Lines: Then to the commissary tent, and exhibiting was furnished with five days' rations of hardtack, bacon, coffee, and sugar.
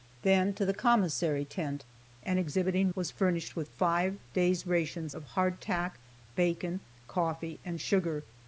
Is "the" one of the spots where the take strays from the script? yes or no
no